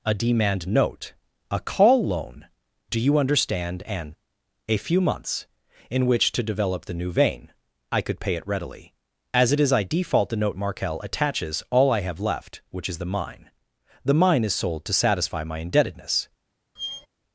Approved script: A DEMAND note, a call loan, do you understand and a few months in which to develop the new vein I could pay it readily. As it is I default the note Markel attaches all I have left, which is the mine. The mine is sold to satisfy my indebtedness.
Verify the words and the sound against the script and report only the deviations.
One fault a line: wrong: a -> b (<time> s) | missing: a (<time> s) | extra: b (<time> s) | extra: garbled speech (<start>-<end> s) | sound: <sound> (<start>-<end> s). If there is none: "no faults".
sound: squeak (16.8-17.1 s)